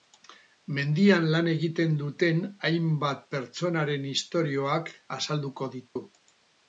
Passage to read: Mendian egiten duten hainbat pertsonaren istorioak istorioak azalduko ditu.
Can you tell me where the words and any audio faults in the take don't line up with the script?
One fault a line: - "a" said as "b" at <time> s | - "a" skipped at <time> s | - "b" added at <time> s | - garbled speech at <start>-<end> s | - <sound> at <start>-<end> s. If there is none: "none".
- "lan" added at 1.3 s
- "istorioak" skipped at 4.9 s
- dropout at 5.9-6.0 s